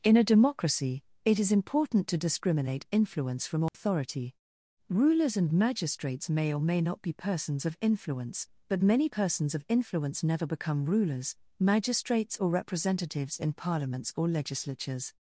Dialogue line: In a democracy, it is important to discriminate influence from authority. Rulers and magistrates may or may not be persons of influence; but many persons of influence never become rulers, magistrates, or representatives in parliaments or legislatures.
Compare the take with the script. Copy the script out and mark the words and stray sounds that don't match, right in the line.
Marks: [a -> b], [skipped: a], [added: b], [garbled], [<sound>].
In a democracy, it is important to discriminate influence from authority. [dropout] Rulers and magistrates may or may not be persons of influence; but many persons of influence never become rulers, magistrates, or representatives in parliaments or legislatures.